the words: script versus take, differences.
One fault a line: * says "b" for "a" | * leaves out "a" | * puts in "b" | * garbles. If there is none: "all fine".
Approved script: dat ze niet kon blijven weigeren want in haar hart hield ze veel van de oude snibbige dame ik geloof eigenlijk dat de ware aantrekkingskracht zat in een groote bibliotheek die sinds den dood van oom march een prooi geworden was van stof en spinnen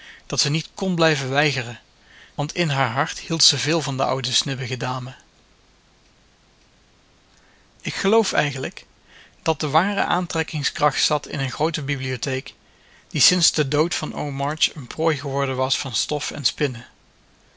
all fine